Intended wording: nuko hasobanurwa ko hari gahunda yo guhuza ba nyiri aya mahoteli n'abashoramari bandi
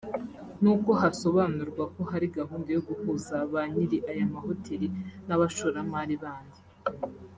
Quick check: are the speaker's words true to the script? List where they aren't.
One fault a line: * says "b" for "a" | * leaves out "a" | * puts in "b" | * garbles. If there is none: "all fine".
all fine